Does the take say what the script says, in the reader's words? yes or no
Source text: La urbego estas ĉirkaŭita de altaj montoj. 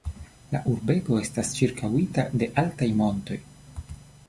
yes